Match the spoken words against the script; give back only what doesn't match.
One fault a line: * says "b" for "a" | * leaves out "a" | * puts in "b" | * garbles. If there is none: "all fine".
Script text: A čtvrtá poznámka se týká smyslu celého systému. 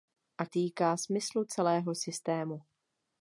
* leaves out "čtvrtá poznámka se"